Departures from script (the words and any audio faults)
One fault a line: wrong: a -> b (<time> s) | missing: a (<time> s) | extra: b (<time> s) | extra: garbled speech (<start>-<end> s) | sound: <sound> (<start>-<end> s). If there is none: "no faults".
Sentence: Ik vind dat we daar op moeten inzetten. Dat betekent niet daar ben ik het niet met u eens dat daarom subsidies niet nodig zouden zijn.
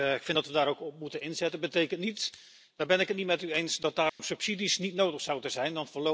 extra: ook (0.7 s)
sound: dropout (4.1-4.2 s)